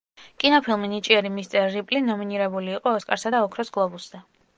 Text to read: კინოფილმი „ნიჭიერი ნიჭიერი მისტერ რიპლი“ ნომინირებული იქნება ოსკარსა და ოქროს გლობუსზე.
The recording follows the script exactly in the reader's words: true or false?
false